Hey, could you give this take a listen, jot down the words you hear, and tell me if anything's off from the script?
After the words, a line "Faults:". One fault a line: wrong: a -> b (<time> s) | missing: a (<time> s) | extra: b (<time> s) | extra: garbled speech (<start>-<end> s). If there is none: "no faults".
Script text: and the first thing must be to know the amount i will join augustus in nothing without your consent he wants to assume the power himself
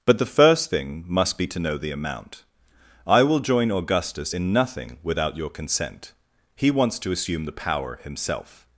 but the first thing must be to know the amount i will join augustus in nothing without your consent he wants to assume the power himself
Faults:
wrong: and -> but (0.1 s)